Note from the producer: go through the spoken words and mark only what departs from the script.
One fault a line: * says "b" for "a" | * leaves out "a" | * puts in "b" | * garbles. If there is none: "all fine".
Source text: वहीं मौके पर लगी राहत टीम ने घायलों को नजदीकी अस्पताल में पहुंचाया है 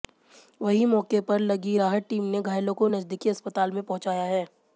all fine